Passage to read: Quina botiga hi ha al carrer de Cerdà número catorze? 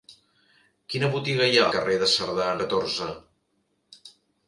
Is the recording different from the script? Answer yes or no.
yes